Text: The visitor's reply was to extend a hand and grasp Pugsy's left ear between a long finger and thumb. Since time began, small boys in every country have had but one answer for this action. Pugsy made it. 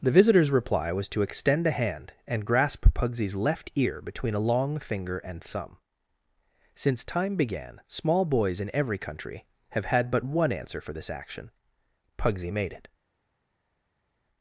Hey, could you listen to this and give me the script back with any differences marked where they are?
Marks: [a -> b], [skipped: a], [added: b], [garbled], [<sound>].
The visitor's reply was to extend a hand and grasp Pugsy's left ear between a long finger and thumb. Since time began, small boys in every country have had but one answer for this action. Pugsy made it.